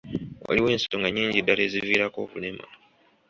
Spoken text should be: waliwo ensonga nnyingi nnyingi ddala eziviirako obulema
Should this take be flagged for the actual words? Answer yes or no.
yes